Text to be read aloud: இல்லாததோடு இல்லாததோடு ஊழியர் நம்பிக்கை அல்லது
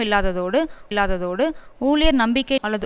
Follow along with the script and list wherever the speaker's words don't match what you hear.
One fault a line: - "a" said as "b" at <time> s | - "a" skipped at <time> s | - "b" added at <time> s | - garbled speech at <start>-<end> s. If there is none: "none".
none